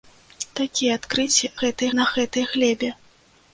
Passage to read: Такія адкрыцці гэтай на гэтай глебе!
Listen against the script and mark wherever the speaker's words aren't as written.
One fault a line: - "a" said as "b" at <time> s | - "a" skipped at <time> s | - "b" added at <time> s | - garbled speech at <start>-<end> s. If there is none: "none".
none